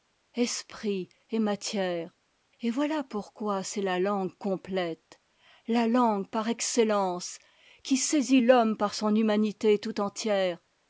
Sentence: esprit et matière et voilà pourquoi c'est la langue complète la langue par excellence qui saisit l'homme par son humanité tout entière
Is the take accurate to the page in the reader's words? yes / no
yes